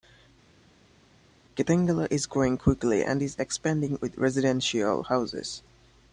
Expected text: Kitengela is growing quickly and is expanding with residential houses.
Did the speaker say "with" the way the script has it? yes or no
yes